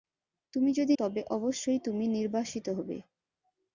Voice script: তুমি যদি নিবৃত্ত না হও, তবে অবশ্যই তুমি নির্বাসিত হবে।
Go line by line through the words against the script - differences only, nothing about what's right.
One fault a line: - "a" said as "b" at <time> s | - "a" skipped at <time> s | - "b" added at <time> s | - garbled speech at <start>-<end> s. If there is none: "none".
- "নিবৃত্ত না হও" skipped at 0.9 s